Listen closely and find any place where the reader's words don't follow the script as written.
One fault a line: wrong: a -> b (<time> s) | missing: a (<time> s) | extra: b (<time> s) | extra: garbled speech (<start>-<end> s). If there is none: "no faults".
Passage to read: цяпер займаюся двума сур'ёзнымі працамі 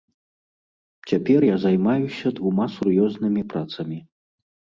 extra: я (1.4 s)